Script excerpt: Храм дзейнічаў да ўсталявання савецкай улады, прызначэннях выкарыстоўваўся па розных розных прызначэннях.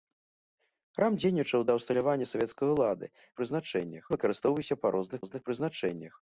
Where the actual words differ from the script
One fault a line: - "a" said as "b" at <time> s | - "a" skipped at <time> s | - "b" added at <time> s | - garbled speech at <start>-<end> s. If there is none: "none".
none